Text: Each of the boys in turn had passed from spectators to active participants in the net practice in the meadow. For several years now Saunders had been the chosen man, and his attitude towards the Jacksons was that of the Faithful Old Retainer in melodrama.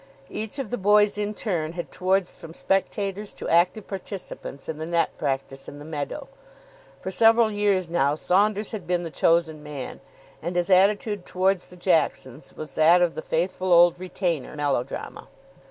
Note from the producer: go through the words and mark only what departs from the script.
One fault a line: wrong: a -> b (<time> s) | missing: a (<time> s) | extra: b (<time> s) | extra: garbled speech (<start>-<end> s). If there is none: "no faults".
wrong: passed -> towards (1.9 s)
missing: in (14.6 s)